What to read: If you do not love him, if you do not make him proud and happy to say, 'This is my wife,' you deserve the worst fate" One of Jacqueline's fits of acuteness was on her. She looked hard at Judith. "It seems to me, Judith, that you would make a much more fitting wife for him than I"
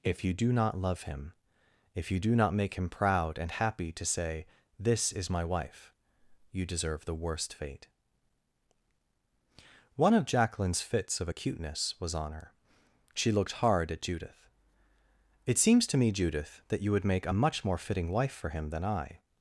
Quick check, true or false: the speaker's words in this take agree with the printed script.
true